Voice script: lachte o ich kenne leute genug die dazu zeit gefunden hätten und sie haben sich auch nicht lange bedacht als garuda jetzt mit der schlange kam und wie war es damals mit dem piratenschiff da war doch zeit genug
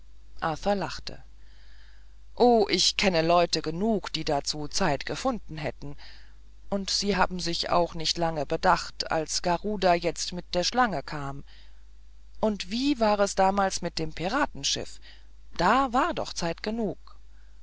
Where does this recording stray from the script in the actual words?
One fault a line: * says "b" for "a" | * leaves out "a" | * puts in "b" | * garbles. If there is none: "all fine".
all fine